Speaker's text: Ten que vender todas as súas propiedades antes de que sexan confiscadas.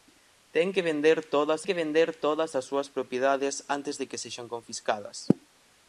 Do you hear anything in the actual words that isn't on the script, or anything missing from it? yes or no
yes